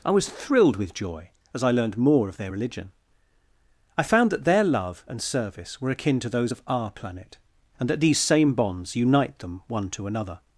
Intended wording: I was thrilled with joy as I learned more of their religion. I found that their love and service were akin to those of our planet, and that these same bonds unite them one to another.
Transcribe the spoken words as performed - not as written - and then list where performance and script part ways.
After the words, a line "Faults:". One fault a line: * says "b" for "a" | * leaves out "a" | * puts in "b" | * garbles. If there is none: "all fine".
I was thrilled with joy as I learned more of their religion. I found that their love and service were akin to those of our planet, and that these same bonds unite them one to another.
Faults:
all fine